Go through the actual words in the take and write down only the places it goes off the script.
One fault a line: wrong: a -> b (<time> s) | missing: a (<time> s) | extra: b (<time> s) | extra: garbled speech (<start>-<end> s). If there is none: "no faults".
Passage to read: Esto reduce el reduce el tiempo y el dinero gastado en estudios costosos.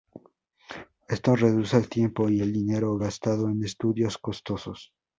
missing: reduce el (1.9 s)